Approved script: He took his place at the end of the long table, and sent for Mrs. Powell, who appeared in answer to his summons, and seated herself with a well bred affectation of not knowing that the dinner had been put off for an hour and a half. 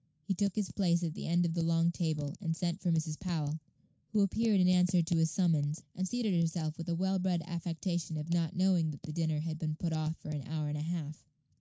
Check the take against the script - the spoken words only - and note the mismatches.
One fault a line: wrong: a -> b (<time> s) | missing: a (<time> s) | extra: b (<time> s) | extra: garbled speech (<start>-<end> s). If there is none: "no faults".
no faults